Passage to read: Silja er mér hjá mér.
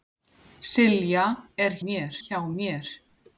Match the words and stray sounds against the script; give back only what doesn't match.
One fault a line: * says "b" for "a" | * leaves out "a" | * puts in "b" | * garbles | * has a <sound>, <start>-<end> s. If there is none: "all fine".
all fine